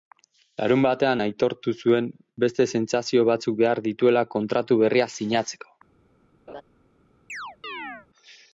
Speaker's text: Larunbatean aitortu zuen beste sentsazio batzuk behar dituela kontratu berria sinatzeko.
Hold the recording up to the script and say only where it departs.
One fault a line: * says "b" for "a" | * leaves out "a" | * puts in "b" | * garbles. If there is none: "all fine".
all fine